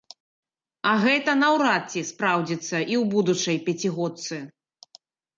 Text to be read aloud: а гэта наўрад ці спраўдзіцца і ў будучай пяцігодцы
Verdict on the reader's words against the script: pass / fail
pass